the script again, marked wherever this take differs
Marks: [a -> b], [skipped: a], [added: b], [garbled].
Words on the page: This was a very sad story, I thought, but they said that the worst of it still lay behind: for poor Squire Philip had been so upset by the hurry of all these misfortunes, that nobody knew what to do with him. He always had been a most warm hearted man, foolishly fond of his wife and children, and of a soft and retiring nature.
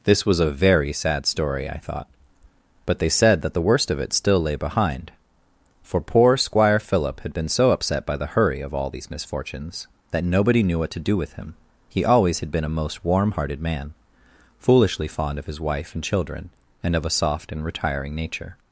This was a very sad story, I thought, but they said that the worst of it still lay behind: for poor Squire Philip had been so upset by the hurry of all these misfortunes, that nobody knew what to do with him. He always had been a most warm hearted man, foolishly fond of his wife and children, and of a soft and retiring nature.